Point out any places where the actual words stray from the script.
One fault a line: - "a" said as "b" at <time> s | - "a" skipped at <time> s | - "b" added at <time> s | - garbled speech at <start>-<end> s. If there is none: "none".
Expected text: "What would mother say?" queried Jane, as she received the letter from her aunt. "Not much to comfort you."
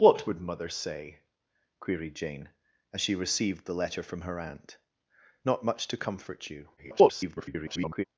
- garbled speech at 6.8-8.0 s